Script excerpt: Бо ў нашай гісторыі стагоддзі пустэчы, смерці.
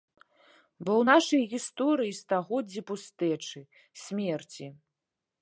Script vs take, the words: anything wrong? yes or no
no